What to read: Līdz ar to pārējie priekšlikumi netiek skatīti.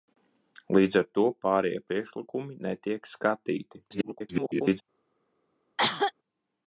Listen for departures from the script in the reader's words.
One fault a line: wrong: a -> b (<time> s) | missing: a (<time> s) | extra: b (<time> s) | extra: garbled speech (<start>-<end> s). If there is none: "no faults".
extra: garbled speech (3.9-4.8 s)